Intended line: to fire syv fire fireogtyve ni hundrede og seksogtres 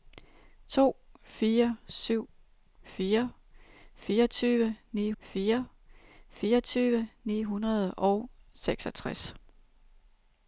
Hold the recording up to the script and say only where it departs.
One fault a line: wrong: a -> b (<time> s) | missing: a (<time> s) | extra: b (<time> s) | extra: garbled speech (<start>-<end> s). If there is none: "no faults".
extra: fire fireogtyve ni (5.2 s)